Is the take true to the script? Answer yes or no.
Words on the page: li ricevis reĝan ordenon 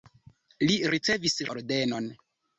no